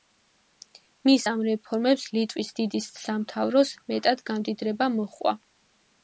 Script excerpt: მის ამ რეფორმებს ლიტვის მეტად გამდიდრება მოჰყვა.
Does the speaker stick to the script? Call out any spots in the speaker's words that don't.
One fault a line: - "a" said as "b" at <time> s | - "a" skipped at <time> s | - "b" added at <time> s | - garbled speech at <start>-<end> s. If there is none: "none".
- "დიდი სამთავროს" added at 2.6 s